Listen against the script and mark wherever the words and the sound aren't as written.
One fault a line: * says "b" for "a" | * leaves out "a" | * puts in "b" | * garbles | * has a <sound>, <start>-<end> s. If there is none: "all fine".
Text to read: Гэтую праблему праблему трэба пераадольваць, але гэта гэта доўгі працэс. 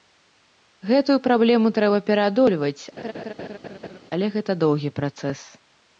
* leaves out "праблему"
* has a laugh, 3.0-4.0 s
* leaves out "гэта"